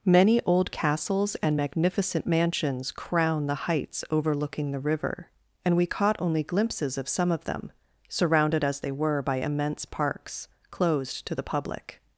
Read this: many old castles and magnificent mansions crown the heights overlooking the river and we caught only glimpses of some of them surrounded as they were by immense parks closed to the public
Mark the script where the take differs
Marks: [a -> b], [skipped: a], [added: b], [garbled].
many old castles and magnificent mansions crown the heights overlooking the river and we caught only glimpses of some of them surrounded as they were by immense parks closed to the public